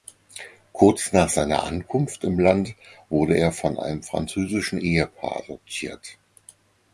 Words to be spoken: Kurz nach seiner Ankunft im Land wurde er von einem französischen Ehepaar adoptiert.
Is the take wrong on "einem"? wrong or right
right